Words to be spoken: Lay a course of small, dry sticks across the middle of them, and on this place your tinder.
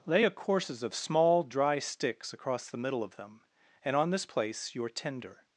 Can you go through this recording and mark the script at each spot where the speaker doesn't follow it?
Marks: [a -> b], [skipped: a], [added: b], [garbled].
Lay a [course -> courses] of small, dry sticks across the middle of them, and on this place your tinder.